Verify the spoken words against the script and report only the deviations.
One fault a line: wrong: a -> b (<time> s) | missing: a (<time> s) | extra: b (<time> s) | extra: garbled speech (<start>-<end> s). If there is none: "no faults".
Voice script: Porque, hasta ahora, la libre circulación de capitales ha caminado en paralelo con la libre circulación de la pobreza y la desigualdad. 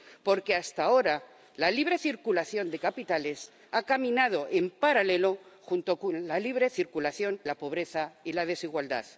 missing: de (7.4 s)